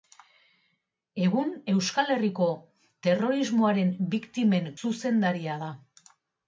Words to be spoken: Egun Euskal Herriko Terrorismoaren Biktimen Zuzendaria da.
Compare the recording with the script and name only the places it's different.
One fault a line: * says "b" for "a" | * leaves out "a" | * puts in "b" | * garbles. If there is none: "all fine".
all fine